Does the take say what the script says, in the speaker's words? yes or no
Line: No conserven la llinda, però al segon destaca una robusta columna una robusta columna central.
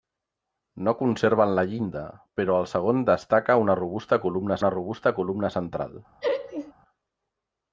yes